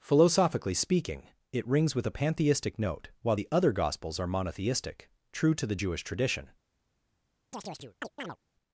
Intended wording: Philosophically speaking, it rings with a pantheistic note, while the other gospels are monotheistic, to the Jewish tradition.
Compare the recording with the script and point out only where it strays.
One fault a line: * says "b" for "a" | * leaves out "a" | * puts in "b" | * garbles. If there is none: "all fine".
* puts in "true"